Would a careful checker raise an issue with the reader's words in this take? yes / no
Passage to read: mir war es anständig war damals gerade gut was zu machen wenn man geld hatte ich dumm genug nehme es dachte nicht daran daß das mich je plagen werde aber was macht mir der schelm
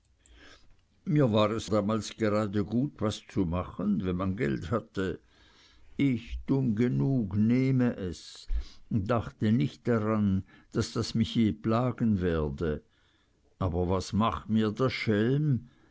yes